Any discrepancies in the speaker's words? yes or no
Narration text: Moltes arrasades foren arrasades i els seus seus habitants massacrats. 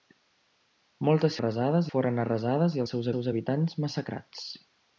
no